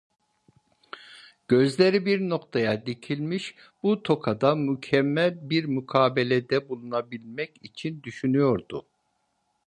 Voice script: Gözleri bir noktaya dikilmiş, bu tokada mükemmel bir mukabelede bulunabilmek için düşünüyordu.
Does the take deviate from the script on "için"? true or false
false